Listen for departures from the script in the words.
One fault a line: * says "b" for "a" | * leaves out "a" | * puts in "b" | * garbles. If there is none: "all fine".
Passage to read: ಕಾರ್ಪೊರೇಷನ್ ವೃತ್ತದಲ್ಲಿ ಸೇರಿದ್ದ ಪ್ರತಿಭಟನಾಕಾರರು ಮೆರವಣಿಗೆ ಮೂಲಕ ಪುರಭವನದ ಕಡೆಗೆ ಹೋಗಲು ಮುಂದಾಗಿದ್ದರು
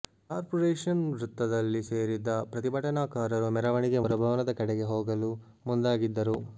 * leaves out "ಮೂಲಕ"